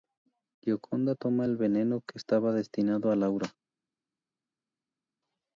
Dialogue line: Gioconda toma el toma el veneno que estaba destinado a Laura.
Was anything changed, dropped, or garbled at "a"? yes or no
no